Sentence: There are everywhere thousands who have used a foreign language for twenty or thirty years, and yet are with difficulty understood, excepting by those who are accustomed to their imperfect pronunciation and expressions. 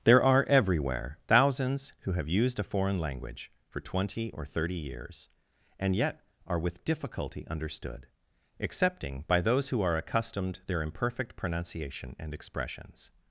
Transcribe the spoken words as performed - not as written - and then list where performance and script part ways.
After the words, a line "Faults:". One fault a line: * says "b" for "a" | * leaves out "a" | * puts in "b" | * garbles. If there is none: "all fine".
There are everywhere thousands who have used a foreign language for twenty or thirty years, and yet are with difficulty understood, excepting by those who are accustomed their imperfect pronunciation and expressions.
Faults:
* leaves out "to"